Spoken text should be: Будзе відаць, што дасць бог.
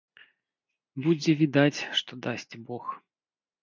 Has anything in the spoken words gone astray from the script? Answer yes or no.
no